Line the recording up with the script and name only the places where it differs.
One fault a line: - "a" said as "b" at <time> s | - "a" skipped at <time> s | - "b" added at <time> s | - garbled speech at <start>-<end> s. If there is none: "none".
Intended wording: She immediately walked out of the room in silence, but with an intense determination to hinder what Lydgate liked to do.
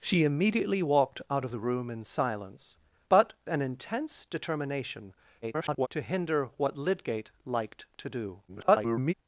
- "with" skipped at 3.3 s
- garbled speech at 5.4-5.9 s
- garbled speech at 8.5-9.1 s